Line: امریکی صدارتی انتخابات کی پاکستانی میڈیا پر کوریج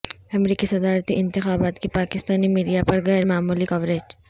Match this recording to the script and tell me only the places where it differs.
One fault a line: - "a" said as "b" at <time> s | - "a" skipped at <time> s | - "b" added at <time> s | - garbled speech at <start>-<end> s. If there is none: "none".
- "غیر معمولی" added at 3.1 s